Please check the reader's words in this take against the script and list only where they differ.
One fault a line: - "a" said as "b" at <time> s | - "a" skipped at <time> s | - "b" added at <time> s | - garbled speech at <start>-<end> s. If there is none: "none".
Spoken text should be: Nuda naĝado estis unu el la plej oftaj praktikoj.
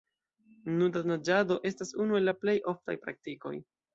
- "estis" said as "estas" at 1.7 s